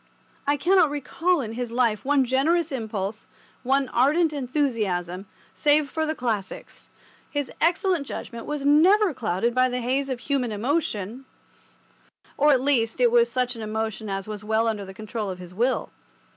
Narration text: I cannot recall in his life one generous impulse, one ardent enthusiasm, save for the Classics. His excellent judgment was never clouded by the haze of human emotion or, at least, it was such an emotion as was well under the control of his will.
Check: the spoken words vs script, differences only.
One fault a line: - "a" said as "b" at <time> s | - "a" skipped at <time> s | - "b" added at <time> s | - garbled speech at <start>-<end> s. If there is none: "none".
none